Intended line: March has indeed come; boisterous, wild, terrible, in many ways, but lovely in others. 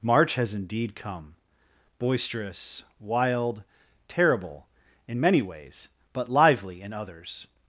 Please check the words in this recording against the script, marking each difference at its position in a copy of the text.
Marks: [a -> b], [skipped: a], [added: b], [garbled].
March has indeed come; boisterous, wild, terrible, in many ways, but [lovely -> lively] in others.